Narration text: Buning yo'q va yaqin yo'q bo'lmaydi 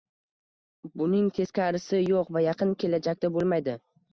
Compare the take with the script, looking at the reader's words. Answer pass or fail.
fail